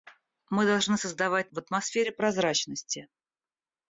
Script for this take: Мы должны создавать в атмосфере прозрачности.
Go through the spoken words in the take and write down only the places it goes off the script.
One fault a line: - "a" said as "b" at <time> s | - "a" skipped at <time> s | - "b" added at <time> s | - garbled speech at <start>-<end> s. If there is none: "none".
none